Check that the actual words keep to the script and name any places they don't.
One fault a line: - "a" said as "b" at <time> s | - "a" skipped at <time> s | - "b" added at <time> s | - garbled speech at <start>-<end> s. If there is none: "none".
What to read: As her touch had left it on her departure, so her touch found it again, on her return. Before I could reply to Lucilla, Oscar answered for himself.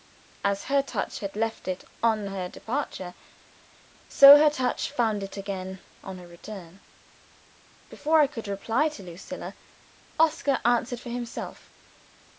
none